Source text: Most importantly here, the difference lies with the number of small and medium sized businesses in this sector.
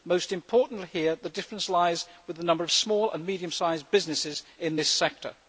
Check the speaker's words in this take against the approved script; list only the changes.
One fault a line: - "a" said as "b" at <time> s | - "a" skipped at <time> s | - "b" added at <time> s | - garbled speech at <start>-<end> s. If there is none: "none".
none